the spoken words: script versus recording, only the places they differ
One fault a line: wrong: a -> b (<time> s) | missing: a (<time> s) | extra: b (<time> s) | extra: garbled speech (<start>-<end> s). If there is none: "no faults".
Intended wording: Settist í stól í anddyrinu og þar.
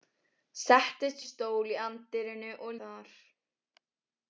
no faults